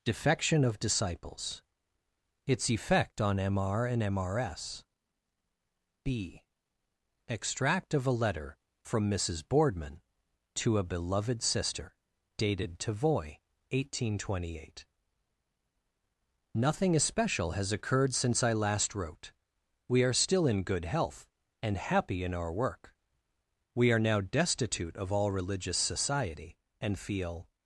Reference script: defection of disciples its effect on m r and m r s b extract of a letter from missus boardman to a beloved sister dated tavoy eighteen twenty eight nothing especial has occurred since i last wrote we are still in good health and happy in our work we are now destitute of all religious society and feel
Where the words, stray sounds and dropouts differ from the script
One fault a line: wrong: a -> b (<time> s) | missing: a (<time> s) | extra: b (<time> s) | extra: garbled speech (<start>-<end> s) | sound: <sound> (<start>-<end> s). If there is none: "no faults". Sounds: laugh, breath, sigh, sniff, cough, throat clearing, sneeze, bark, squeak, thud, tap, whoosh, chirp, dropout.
no faults